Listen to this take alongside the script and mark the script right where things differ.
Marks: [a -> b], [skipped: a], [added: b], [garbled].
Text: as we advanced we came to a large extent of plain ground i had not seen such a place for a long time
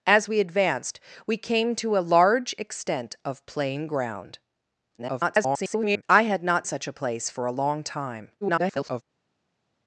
as we advanced we came to a large extent of plain ground [garbled] i had not [skipped: seen] such a place for a long time [garbled]